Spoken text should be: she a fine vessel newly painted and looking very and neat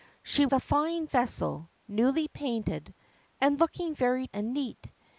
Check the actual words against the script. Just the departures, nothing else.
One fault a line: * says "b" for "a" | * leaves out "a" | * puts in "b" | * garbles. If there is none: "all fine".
all fine